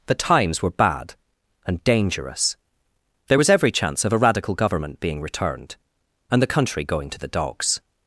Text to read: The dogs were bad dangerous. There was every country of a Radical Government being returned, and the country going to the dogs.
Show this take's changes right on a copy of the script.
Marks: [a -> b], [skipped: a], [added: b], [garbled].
The [dogs -> times] were bad [added: and] dangerous. There was every [country -> chance] of a Radical Government being returned, and the country going to the dogs.